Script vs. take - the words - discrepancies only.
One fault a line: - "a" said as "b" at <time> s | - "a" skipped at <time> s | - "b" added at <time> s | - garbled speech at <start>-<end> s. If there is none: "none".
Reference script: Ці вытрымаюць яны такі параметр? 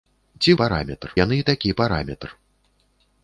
- "вытрымаюць" said as "параметр" at 0.6 s